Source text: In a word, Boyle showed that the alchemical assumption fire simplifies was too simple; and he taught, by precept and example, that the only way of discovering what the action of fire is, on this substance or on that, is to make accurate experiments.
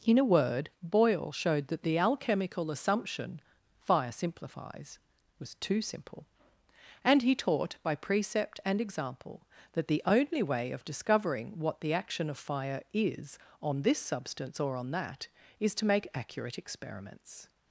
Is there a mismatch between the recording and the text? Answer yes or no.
no